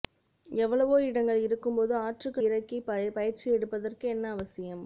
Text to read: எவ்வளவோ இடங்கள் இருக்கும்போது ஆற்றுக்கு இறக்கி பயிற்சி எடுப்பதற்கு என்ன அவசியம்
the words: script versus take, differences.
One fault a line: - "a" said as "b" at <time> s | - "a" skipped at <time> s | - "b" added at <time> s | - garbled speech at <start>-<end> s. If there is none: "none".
none